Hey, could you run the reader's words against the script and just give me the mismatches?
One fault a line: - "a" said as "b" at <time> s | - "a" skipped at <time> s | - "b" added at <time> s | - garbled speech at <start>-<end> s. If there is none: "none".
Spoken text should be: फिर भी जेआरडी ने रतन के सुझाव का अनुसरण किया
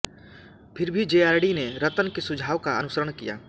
none